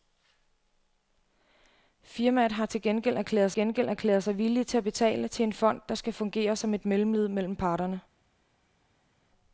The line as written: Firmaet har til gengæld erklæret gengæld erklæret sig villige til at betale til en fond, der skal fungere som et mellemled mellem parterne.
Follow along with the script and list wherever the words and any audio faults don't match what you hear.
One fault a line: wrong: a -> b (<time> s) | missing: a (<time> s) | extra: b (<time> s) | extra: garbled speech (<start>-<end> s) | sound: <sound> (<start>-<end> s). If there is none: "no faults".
no faults